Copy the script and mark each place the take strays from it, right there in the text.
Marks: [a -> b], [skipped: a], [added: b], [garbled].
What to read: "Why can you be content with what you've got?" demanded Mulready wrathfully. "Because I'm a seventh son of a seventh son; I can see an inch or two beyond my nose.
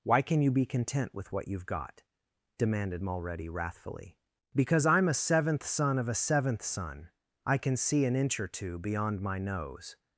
"Why can you be content with what you've got?" demanded Mulready wrathfully. "Because I'm a seventh son of a seventh son; I can see an inch or two beyond my nose.